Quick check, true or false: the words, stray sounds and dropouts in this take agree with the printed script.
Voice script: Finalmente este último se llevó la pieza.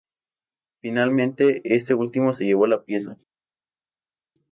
true